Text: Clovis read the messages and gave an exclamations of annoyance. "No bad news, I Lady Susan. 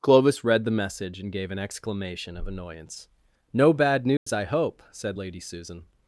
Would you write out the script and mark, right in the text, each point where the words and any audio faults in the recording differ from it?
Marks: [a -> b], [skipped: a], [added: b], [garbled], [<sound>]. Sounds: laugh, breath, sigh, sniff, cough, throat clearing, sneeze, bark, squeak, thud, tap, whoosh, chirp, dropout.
Clovis read the [messages -> message] and gave an [exclamations -> exclamation] of annoyance. "No bad news, [dropout] I [added: hope said] Lady Susan.